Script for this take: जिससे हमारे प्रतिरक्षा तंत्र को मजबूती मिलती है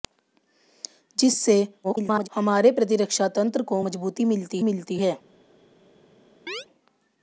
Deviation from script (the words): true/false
true